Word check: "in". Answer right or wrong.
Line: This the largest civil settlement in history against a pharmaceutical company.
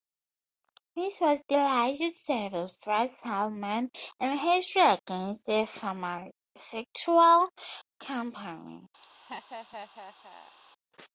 right